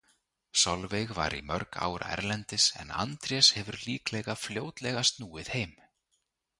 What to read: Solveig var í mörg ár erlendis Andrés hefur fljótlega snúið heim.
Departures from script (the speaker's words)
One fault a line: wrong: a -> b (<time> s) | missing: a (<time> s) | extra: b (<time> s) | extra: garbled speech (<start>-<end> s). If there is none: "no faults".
extra: en (2.8 s)
extra: líklega (3.9 s)